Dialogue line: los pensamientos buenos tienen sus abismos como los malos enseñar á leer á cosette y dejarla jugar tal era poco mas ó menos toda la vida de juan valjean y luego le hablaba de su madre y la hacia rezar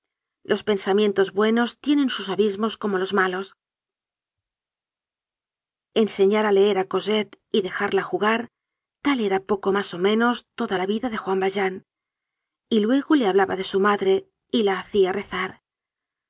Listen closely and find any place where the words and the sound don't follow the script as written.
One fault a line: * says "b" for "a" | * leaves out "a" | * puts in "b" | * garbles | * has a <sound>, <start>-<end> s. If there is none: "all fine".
all fine